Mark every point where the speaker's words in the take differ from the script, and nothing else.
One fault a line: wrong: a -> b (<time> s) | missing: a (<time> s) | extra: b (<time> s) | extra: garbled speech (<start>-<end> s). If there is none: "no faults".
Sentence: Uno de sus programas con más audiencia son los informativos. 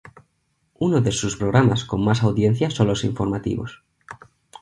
no faults